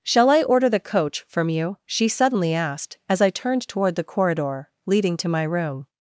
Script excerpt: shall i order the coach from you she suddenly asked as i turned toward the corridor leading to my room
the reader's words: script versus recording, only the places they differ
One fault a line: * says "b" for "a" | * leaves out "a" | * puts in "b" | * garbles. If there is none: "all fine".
all fine